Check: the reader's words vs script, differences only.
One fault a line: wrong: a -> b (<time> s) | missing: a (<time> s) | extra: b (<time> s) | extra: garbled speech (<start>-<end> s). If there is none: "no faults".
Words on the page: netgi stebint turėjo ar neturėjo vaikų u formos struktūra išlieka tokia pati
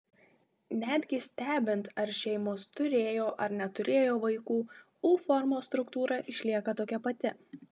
extra: ar šeimos (2.0 s)